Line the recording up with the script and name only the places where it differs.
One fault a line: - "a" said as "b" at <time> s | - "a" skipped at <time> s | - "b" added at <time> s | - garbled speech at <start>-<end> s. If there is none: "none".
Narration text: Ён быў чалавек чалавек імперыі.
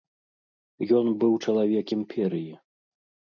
- "чалавек" skipped at 1.9 s